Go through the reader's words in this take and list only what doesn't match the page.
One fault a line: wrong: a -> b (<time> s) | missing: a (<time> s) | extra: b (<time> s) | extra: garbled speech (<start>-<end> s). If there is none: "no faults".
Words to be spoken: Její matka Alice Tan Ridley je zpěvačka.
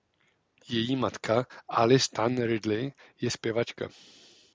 no faults